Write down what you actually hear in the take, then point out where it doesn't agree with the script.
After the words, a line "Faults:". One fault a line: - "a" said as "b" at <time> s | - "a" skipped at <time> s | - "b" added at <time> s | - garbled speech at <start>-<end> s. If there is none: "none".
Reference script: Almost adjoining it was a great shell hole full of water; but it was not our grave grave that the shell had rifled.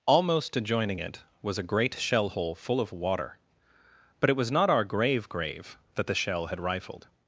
Almost adjoining it was a great shell hole full of water; but it was not our grave grave that the shell had rifled.
Faults:
none